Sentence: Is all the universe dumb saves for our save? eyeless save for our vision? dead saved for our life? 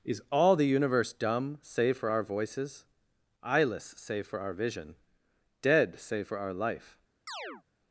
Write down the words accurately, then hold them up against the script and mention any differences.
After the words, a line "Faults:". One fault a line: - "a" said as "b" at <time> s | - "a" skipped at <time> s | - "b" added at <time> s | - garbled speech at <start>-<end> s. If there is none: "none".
Is all the universe dumb save for our voices? eyeless save for our vision? dead save for our life?
Faults:
- "saves" said as "save" at 1.6 s
- "save" said as "voices" at 2.2 s
- "saved" said as "save" at 6.0 s